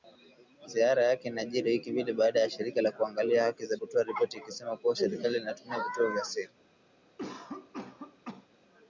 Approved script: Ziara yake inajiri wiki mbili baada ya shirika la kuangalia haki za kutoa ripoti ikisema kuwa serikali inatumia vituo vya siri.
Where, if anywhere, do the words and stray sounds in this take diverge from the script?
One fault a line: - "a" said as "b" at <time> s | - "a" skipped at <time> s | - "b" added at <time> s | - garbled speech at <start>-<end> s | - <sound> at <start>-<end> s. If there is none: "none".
- cough at 7.2-8.5 s